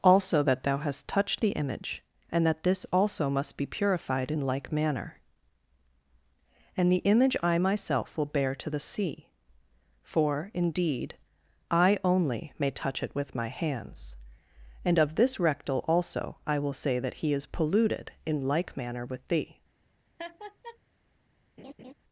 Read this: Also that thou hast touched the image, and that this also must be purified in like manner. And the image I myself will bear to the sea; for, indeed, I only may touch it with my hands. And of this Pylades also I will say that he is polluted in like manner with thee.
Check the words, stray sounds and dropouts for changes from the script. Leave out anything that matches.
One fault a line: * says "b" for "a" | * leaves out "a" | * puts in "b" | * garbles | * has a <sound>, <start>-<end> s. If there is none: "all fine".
* says "Rectal" for "Pylades"
* has a laugh, 20.2-20.8 s
* has a laugh, 21.6-21.9 s